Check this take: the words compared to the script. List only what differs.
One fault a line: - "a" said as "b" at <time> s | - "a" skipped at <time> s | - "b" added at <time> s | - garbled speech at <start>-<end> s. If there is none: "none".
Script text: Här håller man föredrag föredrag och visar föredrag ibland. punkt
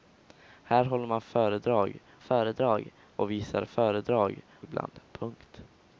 none